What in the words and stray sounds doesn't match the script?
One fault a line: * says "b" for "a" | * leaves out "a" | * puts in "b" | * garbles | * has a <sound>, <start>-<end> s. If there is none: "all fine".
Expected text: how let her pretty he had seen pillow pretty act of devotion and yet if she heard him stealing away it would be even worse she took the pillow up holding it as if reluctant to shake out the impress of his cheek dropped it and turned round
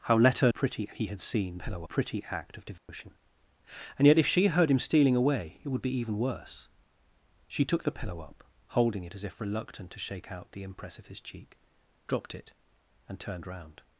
* has a dropout, 2.8-2.9 s